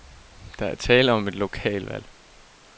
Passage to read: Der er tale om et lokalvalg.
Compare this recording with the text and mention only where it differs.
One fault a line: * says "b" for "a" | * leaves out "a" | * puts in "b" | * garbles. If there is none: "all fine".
all fine